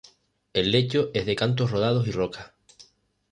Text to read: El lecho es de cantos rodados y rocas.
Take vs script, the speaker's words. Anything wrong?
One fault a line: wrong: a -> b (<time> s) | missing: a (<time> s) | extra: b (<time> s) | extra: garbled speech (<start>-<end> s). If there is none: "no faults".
no faults